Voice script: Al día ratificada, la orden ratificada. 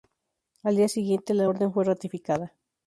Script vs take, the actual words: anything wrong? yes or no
yes